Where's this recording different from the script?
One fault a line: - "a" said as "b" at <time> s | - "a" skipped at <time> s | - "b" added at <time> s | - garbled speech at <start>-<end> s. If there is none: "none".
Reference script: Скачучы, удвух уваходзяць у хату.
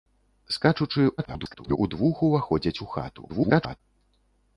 - garbled speech at 1.2-1.8 s
- garbled speech at 3.3-3.8 s